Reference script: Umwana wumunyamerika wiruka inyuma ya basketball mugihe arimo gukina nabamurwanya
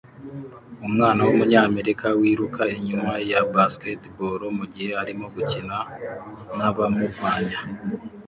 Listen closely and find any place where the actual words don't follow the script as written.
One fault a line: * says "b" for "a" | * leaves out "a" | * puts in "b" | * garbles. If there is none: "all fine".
all fine